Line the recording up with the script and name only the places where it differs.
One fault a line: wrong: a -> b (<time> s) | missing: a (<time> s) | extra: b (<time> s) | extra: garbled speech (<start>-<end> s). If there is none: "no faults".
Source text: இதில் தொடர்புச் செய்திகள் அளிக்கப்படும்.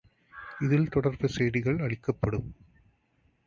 no faults